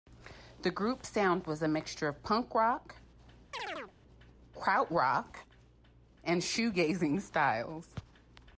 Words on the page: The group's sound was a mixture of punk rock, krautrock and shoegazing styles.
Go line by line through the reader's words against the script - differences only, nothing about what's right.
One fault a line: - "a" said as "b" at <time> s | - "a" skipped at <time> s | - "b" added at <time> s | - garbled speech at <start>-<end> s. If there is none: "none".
none